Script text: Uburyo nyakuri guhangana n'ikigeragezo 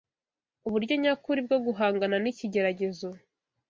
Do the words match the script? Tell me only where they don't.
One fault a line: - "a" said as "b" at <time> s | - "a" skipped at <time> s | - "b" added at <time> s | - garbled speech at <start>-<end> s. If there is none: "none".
- "bwo" added at 1.5 s